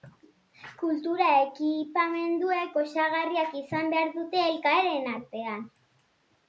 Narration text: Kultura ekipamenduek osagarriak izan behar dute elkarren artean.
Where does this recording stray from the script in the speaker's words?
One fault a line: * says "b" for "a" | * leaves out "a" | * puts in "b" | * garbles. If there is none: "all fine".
all fine